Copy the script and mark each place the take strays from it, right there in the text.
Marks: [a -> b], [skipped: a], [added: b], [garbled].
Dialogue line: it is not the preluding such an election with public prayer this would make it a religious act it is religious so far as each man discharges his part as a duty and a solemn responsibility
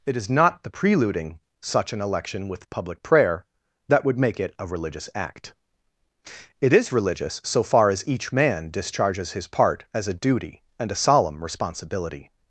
it is not the preluding such an election with public prayer [this -> that] would make it a religious act it is religious so far as each man discharges his part as a duty and a solemn responsibility